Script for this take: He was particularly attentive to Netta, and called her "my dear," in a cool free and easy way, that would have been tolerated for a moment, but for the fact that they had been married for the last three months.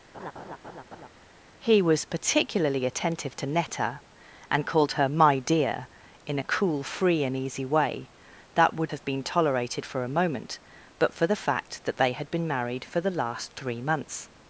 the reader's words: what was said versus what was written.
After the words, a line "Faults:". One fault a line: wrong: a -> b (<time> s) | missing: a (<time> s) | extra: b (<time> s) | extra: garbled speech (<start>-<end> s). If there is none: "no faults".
He was particularly attentive to Netta, and called her "my dear," in a cool free and easy way, that would have been tolerated for a moment, but for the fact that they had been married for the last three months.
Faults:
no faults